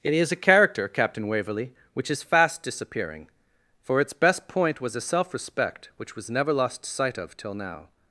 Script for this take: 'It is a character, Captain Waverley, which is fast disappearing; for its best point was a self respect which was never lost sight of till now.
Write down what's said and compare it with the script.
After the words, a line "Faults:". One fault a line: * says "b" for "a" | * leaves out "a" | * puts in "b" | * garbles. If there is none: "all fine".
'It is a character, Captain Waverley, which is fast disappearing; for its best point was a self respect which was never lost sight of till now.
Faults:
all fine